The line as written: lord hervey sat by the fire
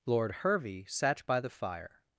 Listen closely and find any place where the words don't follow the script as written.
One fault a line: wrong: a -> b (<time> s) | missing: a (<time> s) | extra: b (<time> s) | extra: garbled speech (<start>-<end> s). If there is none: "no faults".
no faults